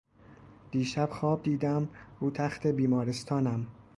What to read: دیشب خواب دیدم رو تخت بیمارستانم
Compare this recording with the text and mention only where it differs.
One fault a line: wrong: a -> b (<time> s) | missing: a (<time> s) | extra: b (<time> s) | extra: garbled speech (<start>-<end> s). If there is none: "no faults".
no faults